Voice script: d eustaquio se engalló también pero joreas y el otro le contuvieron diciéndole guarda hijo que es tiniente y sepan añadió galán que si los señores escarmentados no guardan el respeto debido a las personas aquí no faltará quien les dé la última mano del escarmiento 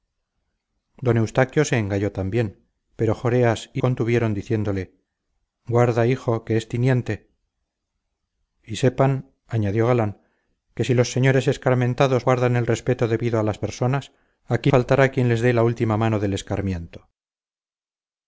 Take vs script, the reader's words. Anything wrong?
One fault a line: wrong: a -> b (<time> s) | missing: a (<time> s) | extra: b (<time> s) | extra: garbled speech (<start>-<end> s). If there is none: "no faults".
missing: el otro le (3.8 s)
missing: no (12.3 s)
missing: no (14.7 s)